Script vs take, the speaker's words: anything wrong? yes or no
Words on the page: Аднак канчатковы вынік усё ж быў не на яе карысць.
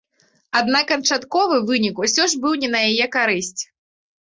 no